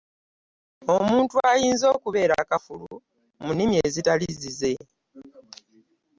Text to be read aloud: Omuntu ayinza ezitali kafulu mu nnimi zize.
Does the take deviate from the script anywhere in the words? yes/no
yes